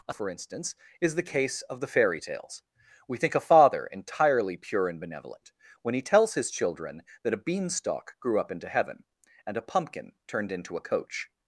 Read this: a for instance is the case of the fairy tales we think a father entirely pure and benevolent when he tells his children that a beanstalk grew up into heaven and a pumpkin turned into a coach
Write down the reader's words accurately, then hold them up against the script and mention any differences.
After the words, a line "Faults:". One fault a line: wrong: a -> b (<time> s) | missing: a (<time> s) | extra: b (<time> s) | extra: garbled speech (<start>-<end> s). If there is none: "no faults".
a for instance is the case of the fairy tales we think a father entirely pure and benevolent when he tells his children that a beanstalk grew up into heaven and a pumpkin turned into a coach
Faults:
no faults